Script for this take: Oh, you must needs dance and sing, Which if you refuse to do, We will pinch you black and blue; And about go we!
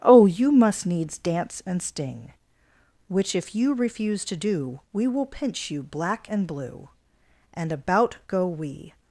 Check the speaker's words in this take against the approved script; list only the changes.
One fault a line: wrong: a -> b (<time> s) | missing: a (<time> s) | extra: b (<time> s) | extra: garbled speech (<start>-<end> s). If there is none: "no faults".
wrong: sing -> sting (1.8 s)